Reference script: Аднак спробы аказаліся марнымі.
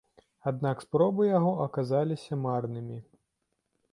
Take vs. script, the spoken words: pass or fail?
fail